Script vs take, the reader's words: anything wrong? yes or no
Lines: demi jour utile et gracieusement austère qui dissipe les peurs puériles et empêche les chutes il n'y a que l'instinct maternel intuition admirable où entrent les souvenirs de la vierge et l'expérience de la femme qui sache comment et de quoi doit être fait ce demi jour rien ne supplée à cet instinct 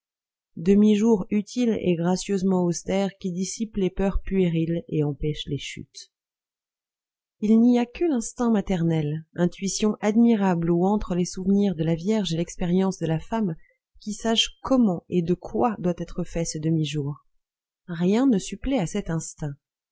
no